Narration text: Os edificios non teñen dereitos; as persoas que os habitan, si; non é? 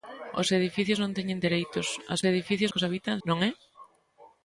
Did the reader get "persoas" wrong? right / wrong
wrong